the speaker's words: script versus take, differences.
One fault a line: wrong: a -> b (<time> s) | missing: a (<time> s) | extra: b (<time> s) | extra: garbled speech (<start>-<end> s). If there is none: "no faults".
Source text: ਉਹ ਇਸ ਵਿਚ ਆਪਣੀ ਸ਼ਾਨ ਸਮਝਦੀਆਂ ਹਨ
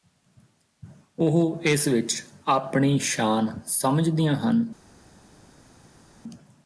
no faults